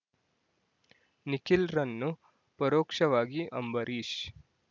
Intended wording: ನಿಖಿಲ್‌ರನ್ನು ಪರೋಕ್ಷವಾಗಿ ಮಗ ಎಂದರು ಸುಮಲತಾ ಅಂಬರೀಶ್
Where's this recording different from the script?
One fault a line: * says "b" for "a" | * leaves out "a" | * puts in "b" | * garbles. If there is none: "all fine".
* leaves out "ಮಗ ಎಂದರು ಸುಮಲತಾ"